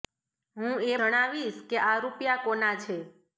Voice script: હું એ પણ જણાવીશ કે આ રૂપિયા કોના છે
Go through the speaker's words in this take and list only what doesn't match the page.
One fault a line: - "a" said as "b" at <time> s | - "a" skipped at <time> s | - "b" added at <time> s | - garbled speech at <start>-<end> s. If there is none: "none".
- "પણ" skipped at 0.9 s